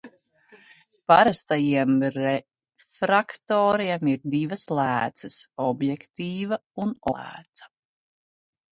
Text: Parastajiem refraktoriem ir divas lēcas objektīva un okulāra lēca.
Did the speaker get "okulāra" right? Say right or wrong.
wrong